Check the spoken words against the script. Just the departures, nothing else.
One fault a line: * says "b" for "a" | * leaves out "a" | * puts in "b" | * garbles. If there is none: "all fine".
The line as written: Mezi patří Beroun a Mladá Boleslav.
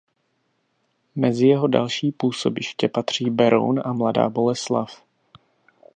* puts in "jeho další působiště"